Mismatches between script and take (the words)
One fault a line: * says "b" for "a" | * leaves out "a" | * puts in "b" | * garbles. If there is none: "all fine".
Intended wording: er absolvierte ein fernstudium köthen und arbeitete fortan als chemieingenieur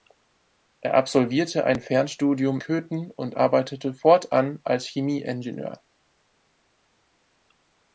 all fine